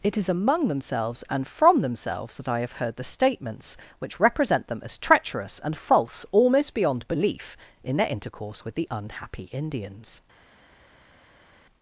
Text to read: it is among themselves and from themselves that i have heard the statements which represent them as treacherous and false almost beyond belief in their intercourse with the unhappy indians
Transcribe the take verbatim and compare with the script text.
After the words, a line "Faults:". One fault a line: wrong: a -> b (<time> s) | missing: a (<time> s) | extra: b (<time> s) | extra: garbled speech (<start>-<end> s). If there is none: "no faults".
it is among themselves and from themselves that i have heard the statements which represent them as treacherous and false almost beyond belief in their intercourse with the unhappy indians
Faults:
no faults